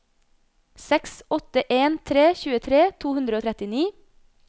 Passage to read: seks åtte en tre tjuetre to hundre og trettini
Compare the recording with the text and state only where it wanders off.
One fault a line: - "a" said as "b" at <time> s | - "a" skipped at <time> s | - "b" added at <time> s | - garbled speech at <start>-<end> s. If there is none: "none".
none